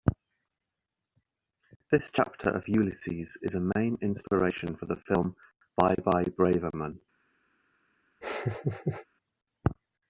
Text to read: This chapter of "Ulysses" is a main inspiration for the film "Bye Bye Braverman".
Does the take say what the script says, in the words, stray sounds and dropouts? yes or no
no